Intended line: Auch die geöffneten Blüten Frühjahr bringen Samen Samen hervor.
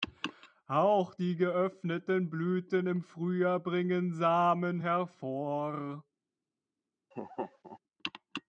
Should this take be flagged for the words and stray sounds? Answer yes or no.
yes